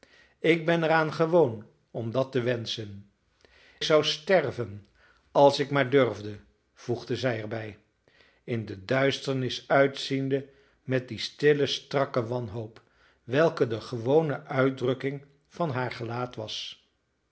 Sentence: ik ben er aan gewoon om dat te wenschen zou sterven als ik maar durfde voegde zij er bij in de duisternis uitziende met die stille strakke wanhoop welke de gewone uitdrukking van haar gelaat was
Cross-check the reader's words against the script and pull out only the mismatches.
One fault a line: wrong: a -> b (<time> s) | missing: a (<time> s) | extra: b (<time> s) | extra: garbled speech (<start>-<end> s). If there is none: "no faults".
no faults